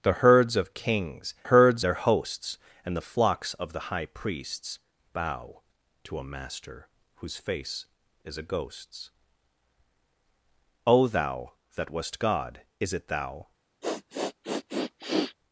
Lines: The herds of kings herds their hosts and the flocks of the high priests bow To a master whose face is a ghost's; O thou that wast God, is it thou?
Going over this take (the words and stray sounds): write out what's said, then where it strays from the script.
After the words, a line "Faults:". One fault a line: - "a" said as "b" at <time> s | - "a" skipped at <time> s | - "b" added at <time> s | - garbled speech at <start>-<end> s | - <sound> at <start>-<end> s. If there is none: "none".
The herds of kings herds their hosts and the flocks of the high priests bow To a master whose face is a ghost's; O thou that wast God, is it thou?
Faults:
- sniff at 13.8-15.3 s